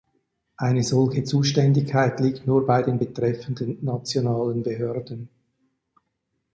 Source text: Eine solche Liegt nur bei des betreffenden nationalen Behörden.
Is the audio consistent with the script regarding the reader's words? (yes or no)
no